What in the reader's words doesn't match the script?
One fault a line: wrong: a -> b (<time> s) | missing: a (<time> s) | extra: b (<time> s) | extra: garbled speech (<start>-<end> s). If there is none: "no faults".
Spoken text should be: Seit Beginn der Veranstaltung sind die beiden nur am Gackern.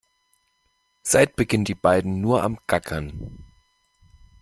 missing: der Veranstaltung sind (1.6 s)